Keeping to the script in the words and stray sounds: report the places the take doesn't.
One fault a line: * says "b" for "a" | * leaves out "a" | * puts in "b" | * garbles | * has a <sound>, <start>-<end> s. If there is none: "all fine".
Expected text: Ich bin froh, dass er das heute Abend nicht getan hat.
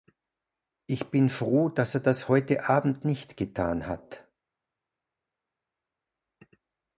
all fine